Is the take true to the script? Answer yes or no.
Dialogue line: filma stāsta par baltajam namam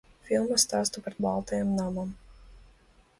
yes